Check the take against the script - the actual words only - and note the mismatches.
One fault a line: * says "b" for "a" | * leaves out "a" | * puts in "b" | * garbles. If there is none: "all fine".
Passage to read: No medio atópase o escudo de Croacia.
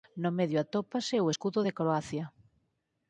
all fine